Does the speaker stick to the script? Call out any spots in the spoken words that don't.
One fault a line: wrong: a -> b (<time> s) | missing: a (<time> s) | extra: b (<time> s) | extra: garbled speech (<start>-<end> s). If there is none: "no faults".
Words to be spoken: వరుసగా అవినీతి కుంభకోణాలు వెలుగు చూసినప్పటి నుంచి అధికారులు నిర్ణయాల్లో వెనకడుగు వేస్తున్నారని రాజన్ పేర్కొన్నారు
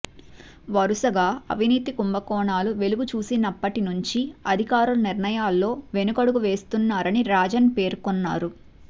no faults